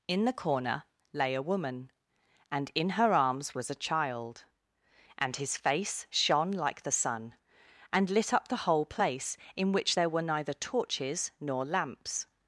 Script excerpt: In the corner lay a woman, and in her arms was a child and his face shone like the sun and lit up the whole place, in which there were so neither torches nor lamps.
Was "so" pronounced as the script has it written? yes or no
no